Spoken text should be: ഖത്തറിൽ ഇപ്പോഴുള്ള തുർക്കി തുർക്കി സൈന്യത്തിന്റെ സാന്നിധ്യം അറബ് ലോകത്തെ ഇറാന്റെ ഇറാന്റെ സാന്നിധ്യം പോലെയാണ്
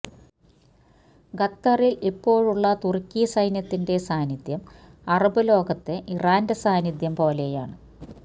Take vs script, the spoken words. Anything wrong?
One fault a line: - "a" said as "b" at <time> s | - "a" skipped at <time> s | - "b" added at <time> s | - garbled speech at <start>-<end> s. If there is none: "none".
- "തുർക്കി" skipped at 3.2 s
- "ഇറാന്റെ" skipped at 6.6 s